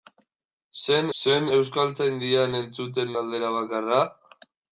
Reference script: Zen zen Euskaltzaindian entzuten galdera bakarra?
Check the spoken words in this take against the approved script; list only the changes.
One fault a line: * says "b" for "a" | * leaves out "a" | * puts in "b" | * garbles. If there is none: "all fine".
all fine